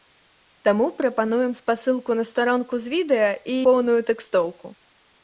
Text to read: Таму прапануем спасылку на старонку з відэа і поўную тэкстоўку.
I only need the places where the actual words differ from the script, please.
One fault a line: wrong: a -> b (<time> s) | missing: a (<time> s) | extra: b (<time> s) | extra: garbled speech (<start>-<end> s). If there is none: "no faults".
no faults